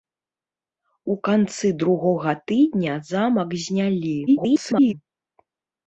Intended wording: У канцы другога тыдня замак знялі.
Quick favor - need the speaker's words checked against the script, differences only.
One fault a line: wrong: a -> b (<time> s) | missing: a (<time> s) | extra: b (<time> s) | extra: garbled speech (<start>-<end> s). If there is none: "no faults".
extra: garbled speech (4.3-4.9 s)